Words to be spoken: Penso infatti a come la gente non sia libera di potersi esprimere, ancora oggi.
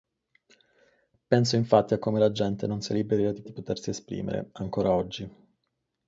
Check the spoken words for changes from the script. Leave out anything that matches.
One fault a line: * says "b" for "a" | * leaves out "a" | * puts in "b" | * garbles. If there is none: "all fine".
* puts in "di"